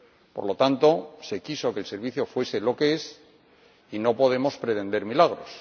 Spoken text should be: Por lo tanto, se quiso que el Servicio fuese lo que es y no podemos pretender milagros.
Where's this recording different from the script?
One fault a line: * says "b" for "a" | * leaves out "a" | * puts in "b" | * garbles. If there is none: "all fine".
all fine